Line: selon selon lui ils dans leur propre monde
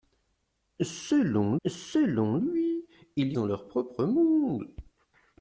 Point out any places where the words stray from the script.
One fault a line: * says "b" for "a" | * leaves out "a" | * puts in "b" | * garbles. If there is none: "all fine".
all fine